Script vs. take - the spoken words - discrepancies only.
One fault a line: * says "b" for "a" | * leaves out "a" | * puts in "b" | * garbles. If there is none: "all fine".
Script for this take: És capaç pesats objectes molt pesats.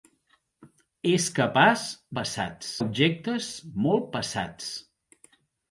all fine